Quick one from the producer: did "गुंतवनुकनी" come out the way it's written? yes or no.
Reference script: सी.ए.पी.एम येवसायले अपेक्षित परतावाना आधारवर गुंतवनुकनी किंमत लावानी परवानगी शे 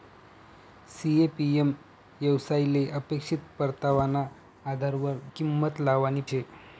no